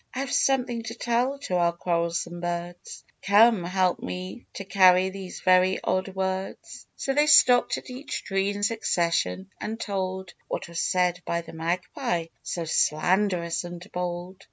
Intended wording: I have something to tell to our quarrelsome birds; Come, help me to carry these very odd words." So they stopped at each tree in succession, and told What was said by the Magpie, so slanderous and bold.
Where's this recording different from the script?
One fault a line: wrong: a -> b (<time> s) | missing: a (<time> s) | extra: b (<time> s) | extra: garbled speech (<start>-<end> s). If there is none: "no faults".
no faults